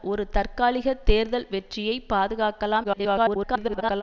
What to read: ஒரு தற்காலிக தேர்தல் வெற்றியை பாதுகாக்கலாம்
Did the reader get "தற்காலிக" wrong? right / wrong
right